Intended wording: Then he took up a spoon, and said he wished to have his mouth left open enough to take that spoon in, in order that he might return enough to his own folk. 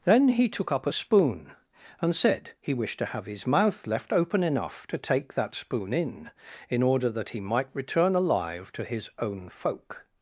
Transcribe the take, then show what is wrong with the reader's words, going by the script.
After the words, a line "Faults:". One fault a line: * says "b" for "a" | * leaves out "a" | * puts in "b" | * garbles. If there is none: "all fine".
Then he took up a spoon, and said he wished to have his mouth left open enough to take that spoon in, in order that he might return alive to his own folk.
Faults:
* says "alive" for "enough"